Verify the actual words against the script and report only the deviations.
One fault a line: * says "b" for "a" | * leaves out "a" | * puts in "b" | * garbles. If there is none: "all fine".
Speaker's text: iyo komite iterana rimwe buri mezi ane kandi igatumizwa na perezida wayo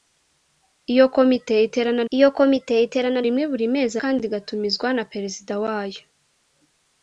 * puts in "iyo komite iterana"
* leaves out "ane"